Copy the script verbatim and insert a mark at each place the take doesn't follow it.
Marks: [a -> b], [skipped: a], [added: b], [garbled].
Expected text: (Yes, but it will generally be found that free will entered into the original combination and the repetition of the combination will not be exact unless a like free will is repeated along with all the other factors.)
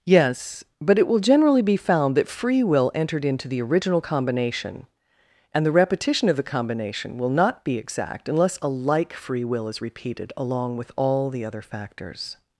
(Yes, but it will generally be found that free will entered into the original combination and the repetition of the combination will not be exact unless a like free will is repeated along with all the other factors.)